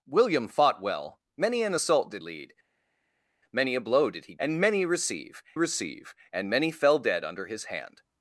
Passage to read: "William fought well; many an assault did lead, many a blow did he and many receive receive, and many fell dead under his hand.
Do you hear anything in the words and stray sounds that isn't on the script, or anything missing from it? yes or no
no